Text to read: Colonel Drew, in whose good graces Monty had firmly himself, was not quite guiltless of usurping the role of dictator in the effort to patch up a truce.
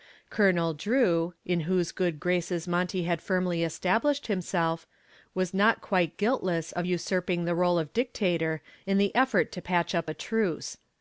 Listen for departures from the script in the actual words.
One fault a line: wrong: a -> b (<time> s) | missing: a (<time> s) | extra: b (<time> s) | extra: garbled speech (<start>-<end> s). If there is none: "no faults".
extra: established (3.6 s)